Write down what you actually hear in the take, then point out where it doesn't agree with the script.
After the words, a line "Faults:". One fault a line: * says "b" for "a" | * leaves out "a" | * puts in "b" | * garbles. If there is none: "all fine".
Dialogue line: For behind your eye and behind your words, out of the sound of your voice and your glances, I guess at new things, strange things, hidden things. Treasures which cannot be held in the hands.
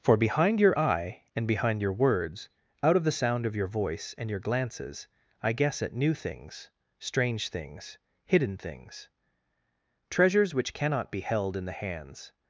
For behind your eye and behind your words, out of the sound of your voice and your glances, I guess at new things, strange things, hidden things. Treasures which cannot be held in the hands.
Faults:
all fine